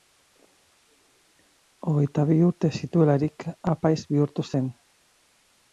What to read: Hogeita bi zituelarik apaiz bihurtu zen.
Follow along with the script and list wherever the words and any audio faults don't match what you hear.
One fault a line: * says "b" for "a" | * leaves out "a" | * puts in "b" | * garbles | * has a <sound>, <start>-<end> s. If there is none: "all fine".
* puts in "urte"